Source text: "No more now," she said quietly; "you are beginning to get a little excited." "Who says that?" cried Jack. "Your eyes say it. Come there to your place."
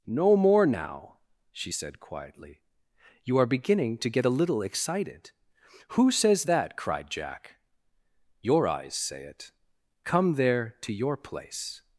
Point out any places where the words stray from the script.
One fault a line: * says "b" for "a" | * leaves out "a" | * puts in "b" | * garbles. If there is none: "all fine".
all fine